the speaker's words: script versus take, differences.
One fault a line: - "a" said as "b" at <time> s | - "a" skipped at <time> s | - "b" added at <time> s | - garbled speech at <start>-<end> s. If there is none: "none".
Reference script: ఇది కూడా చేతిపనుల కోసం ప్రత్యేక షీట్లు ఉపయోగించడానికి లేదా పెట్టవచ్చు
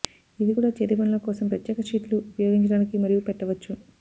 - "లేదా" said as "మరియు" at 3.0 s